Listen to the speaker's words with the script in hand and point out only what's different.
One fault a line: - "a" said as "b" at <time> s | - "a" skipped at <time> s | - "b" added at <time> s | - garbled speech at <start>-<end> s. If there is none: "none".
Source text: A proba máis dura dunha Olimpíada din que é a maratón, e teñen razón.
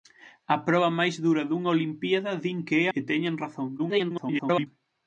- "a maratón" skipped at 2.9 s
- garbled speech at 3.8-4.7 s